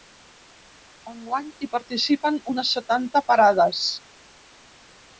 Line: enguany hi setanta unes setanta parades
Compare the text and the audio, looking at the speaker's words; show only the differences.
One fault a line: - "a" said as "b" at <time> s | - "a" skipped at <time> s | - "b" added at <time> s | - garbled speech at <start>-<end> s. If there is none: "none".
- "setanta" said as "participen" at 1.8 s